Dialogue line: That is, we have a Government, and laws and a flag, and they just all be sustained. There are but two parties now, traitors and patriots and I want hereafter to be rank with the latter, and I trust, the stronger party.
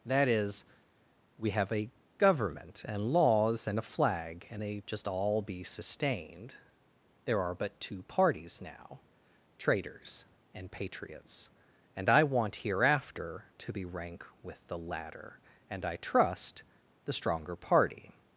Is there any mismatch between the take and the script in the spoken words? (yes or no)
no